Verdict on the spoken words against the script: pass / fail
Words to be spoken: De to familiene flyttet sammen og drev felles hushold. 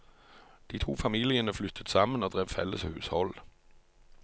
pass